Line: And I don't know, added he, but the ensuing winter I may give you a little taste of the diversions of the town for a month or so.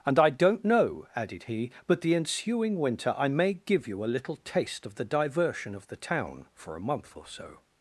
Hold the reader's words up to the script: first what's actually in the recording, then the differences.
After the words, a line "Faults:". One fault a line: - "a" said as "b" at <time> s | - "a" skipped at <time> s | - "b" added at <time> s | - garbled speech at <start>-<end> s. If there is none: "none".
And I don't know, added he, but the ensuing winter I may give you a little taste of the diversion of the town for a month or so.
Faults:
- "diversions" said as "diversion" at 5.0 s